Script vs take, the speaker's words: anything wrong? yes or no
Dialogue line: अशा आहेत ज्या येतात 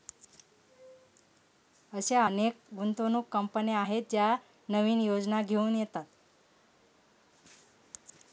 yes